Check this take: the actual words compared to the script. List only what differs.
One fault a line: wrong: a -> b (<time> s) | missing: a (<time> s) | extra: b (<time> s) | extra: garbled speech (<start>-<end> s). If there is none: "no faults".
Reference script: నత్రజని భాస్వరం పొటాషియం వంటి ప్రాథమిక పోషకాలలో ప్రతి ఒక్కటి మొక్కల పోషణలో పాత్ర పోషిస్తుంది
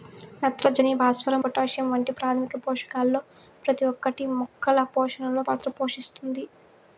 no faults